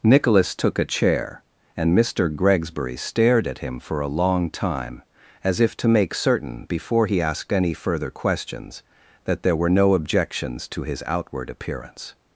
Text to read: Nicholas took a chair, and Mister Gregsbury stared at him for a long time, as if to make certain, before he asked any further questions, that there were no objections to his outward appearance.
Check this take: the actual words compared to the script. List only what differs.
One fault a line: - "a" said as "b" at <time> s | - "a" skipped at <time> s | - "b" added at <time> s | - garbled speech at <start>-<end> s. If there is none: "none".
none